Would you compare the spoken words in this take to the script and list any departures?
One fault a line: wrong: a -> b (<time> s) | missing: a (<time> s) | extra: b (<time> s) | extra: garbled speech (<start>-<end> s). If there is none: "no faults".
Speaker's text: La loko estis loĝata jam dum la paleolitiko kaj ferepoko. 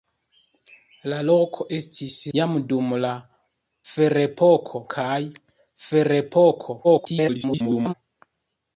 missing: loĝata (2.1 s)
wrong: paleolitiko -> ferepoko (3.9 s)
extra: garbled speech (6.8-7.9 s)